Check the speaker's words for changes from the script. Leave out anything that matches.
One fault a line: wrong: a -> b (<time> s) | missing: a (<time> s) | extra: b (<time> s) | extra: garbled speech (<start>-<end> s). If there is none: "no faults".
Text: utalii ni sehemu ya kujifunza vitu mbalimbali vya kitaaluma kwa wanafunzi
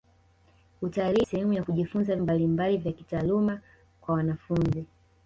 missing: ni (1.2 s)
missing: vitu (2.2 s)